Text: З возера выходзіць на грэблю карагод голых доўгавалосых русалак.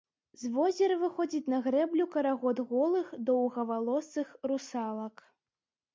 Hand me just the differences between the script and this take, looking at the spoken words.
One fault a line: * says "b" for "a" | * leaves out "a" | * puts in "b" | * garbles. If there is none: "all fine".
all fine